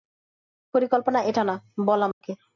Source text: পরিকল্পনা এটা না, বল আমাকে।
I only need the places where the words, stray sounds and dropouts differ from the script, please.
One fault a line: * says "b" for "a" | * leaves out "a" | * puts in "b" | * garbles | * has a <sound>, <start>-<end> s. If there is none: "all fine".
* has a dropout, 2.1-2.2 s